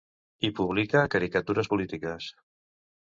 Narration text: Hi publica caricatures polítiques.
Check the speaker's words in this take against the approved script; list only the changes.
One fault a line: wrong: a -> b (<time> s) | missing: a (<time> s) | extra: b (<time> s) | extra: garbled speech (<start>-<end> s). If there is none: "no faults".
no faults